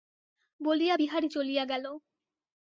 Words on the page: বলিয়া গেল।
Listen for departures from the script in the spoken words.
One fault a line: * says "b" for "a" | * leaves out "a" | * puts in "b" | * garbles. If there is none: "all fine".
* puts in "বিহারী চলিয়া"